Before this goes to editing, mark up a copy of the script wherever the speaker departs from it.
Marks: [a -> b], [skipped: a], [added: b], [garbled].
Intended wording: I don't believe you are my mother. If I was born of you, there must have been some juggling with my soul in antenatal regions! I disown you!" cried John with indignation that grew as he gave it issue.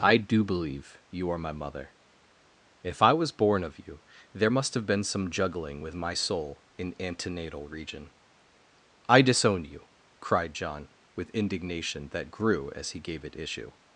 I [don't -> do] believe you are my mother. If I was born of you, there must have been some juggling with my soul in antenatal [regions! -> region] I disown you!" cried John with indignation that grew as he gave it issue.